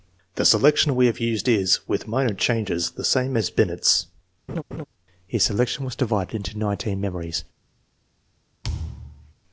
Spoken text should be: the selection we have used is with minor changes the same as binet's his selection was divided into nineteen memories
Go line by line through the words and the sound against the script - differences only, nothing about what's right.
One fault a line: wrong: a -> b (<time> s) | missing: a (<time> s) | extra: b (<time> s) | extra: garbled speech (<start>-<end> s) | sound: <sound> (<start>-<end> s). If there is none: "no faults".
sound: laugh (4.5-4.9 s)
sound: thud (8.6-9.3 s)